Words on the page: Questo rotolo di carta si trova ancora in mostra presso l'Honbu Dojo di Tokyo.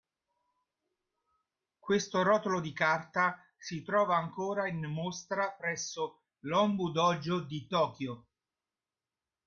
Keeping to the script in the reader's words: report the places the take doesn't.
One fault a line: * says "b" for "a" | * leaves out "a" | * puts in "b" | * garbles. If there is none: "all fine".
all fine